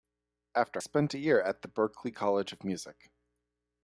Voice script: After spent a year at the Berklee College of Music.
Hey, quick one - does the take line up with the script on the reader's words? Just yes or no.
yes